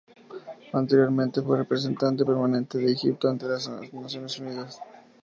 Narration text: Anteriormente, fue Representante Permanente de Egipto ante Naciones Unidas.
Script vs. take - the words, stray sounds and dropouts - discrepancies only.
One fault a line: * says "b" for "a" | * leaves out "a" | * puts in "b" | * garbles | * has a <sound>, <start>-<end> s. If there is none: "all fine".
* puts in "las"